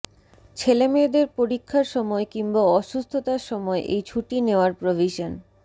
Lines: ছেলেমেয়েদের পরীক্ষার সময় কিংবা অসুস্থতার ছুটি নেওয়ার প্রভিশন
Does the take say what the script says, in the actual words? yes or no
no